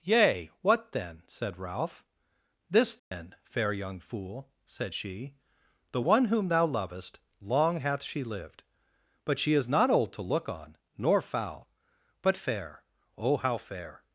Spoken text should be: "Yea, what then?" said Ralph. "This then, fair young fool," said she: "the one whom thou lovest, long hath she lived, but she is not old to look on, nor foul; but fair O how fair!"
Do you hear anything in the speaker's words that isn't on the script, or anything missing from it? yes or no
no